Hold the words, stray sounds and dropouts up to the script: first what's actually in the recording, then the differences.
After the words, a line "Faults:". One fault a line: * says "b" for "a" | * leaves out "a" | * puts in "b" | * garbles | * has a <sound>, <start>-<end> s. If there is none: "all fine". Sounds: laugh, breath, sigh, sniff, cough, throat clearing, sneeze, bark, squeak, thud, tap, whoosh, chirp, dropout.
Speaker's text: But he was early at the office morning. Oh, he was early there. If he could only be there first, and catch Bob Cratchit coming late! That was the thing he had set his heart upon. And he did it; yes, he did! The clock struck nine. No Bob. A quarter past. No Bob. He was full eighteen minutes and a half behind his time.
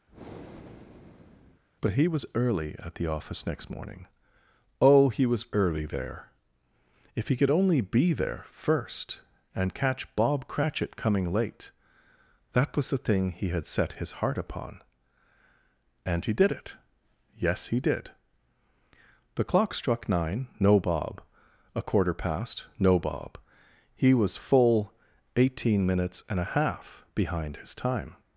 But he was early at the office next morning. Oh, he was early there. If he could only be there first, and catch Bob Cratchit coming late! That was the thing he had set his heart upon. And he did it; yes, he did! The clock struck nine. No Bob. A quarter past. No Bob. He was full eighteen minutes and a half behind his time.
Faults:
* has a breath, 0.1-1.6 s
* puts in "next"